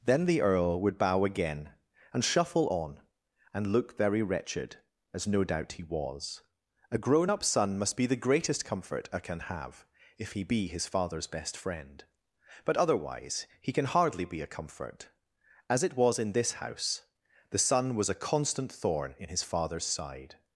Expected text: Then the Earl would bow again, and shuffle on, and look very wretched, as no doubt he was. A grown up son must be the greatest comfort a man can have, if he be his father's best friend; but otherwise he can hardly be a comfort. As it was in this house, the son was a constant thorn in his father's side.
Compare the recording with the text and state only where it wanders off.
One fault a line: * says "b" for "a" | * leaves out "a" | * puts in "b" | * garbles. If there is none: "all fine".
* leaves out "man"